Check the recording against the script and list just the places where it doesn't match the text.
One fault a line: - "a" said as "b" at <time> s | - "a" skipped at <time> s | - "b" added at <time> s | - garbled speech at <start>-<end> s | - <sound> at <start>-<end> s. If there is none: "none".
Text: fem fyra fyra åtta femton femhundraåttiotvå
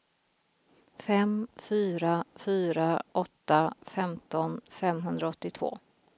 none